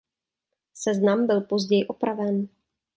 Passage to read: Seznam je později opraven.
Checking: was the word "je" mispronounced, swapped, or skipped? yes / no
yes